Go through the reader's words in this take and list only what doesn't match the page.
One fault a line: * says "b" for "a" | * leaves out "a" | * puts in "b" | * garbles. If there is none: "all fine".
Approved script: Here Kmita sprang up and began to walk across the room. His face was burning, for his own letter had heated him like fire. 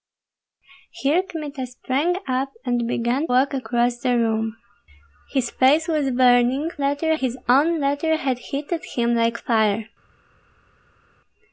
* leaves out "to"
* says "letter" for "for"